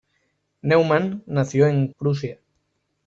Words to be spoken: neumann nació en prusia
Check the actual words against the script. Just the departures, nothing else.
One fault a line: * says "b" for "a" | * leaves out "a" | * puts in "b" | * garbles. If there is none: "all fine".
all fine